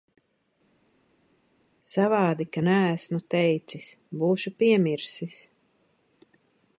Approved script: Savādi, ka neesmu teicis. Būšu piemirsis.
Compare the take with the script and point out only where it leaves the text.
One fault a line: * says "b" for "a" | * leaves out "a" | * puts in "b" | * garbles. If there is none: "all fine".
all fine